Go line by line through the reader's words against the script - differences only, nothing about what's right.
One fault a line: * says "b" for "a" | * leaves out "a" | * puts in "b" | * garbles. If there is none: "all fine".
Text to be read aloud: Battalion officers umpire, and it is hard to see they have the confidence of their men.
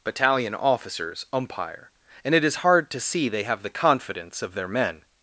all fine